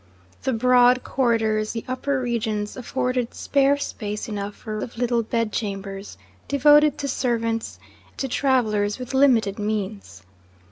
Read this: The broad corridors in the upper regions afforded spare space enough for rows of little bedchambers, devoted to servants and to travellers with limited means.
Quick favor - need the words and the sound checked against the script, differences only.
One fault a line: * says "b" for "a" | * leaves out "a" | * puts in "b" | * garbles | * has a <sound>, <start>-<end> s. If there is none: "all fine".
* leaves out "in"
* leaves out "rows"
* leaves out "and"